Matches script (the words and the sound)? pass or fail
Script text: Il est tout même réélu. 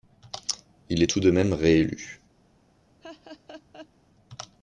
fail